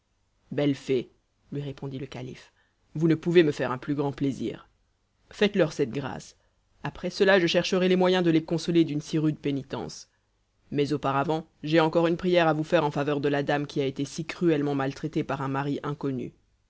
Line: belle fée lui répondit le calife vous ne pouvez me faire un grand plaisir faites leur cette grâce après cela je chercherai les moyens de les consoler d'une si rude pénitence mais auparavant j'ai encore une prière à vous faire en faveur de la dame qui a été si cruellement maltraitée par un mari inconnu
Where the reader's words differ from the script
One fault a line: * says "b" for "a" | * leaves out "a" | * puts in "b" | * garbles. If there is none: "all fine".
* puts in "plus"